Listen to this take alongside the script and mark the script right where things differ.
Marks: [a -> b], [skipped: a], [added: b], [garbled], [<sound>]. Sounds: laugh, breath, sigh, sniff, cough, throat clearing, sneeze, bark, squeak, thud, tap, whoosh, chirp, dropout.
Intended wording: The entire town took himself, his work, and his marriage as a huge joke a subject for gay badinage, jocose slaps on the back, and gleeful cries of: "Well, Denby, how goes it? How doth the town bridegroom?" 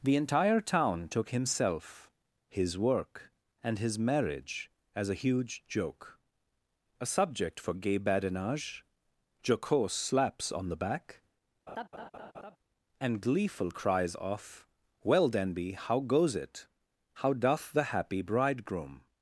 The entire town took himself, his work, and his marriage as a huge joke a subject for gay badinage, jocose slaps on the back, [laugh] and gleeful cries of: "Well, Denby, how goes it? How doth the [town -> happy] bridegroom?"